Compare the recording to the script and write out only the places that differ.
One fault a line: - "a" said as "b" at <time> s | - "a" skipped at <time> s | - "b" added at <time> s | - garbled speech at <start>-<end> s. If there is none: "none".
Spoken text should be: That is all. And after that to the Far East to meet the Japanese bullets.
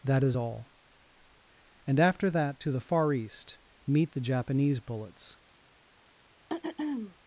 - "to" skipped at 3.6 s